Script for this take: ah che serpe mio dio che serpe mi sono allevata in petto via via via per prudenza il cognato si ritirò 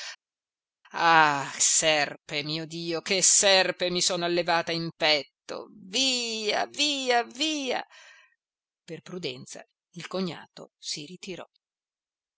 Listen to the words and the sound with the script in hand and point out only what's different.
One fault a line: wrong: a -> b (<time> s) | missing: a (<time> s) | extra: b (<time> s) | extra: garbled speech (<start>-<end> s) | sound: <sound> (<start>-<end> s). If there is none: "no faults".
missing: che (1.5 s)